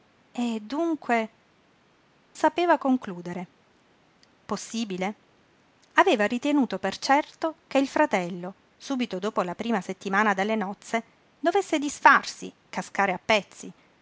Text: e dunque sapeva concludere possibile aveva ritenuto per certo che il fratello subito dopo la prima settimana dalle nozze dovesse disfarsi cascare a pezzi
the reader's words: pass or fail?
pass